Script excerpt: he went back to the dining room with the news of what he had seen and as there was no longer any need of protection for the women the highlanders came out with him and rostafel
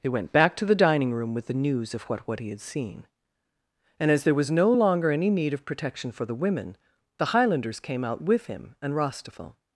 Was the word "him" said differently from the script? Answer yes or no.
no